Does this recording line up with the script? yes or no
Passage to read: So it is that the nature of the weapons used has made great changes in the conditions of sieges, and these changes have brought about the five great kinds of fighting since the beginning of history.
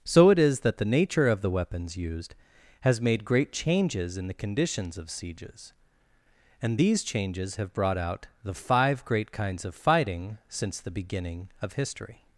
no